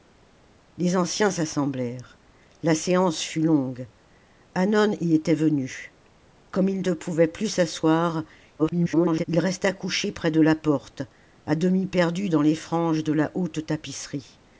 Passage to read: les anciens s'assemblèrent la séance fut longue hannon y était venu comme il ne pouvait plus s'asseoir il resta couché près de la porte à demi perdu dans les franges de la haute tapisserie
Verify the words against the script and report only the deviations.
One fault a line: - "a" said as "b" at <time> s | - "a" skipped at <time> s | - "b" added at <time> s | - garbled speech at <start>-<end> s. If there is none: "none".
- garbled speech at 8.6-9.2 s